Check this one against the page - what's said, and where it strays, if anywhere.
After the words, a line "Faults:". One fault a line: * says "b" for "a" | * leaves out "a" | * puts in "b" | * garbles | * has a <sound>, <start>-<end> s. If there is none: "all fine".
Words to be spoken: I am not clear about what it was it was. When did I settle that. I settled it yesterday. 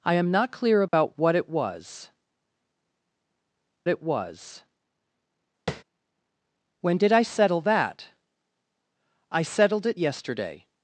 I am not clear about what it was it was. When did I settle that. I settled it yesterday.
Faults:
* has a dropout, 0.9-0.9 s
* has a tap, 5.7-5.8 s